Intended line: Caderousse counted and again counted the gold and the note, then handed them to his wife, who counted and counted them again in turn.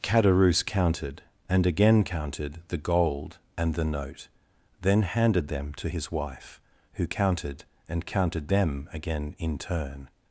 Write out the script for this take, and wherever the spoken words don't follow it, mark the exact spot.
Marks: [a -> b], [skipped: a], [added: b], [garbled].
Caderousse counted and again counted the gold and the note, then handed them to his wife, who counted and counted them again in turn.